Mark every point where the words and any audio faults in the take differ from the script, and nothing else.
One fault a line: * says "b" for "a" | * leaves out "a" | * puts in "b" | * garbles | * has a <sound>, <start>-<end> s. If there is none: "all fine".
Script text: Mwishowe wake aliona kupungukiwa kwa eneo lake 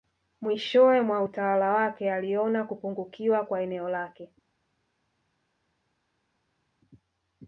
* puts in "mwa utawala"